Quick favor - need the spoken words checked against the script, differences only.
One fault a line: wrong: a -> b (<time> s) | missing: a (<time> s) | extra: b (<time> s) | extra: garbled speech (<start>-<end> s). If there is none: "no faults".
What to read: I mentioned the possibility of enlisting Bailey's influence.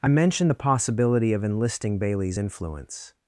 no faults